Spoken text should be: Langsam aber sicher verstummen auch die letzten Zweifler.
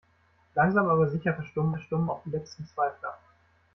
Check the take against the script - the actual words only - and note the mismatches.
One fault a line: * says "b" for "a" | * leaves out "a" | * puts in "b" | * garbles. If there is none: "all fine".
* puts in "verstummen"